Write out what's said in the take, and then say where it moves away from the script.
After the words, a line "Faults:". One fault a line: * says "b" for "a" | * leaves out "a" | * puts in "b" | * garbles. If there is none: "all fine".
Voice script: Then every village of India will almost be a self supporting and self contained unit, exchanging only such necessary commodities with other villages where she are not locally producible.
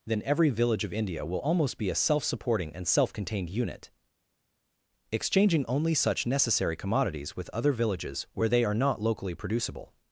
Then every village of India will almost be a self supporting and self contained unit, exchanging only such necessary commodities with other villages where they are not locally producible.
Faults:
* says "they" for "she"